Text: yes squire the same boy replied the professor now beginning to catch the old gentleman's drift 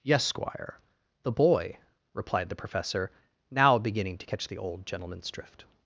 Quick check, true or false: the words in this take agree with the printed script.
false